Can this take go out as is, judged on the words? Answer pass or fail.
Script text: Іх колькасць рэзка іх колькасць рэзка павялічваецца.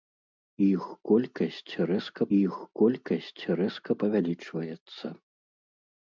pass